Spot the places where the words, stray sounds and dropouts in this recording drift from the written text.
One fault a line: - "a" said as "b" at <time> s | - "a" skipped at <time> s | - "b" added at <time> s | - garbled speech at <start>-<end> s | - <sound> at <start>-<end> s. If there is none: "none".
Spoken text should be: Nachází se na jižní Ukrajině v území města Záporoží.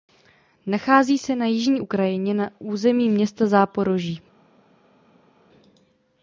- "v" said as "na" at 2.3 s